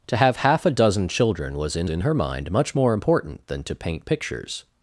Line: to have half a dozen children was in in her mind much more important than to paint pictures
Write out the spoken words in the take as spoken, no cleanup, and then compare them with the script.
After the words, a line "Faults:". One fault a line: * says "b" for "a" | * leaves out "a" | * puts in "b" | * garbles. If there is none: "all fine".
to have half a dozen children was in in her mind much more important than to paint pictures
Faults:
all fine